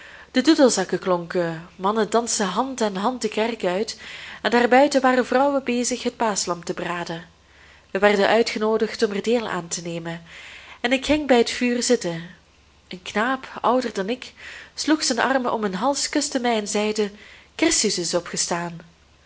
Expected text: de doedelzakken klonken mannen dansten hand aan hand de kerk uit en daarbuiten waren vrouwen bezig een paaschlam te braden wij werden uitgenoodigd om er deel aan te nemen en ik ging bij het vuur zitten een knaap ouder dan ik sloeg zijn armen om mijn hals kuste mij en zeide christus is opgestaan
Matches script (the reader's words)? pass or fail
fail